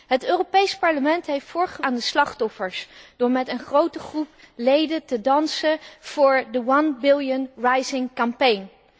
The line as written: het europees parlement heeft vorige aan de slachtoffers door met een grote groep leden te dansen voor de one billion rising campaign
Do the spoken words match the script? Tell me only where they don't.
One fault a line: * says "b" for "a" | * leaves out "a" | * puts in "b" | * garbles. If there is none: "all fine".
all fine